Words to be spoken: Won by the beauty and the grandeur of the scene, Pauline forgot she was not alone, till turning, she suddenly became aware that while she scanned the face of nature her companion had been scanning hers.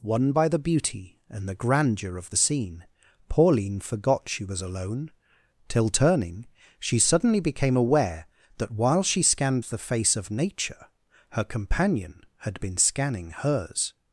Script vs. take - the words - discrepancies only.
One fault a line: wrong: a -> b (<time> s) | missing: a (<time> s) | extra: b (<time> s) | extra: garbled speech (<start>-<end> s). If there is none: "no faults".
missing: not (4.6 s)